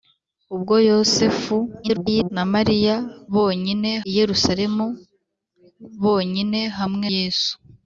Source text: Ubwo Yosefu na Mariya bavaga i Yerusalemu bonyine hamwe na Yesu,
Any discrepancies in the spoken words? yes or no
yes